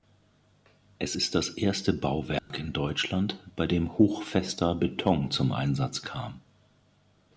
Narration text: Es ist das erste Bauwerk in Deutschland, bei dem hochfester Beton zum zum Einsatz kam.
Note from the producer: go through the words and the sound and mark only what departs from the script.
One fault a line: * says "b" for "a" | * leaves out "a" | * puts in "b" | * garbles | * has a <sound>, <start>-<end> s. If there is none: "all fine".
* has a dropout, 2.4-2.5 s
* leaves out "zum"